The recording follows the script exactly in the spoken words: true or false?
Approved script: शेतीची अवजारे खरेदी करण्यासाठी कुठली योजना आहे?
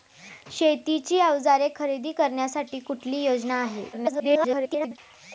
false